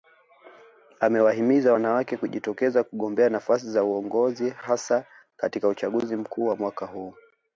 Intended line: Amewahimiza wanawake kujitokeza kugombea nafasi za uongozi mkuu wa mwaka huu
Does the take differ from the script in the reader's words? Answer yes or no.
yes